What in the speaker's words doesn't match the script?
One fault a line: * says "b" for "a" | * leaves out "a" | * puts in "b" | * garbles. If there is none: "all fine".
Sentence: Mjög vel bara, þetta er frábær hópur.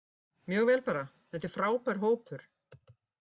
all fine